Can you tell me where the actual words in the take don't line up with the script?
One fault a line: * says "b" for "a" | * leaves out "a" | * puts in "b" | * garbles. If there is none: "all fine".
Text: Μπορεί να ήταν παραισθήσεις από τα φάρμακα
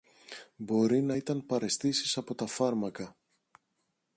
all fine